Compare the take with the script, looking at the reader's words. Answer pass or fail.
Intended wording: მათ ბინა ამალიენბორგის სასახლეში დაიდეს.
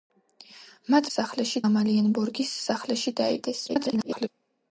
fail